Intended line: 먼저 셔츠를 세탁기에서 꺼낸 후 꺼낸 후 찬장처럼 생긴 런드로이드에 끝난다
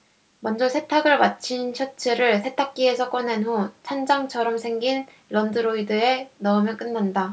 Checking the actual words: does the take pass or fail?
fail